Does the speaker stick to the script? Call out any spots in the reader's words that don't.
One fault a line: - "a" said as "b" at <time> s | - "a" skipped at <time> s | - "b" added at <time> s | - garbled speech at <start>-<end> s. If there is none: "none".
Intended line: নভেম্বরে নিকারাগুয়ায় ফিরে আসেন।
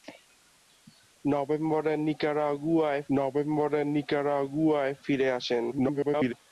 - "নভেম্বরে নিকারাগুয়ায়" added at 3.1 s
- garbled speech at 5.7-6.3 s